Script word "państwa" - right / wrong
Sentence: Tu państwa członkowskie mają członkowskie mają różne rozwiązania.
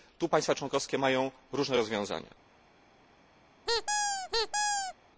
right